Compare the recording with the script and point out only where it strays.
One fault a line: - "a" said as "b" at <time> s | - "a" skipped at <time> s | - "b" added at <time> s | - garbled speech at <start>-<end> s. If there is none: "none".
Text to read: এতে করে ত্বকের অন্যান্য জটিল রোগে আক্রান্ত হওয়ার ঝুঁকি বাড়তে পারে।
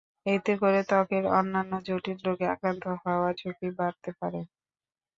none